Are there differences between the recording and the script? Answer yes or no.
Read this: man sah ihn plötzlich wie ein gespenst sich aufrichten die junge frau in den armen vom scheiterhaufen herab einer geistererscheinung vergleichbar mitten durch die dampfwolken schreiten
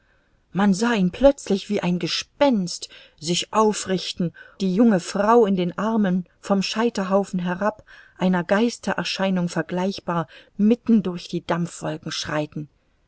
no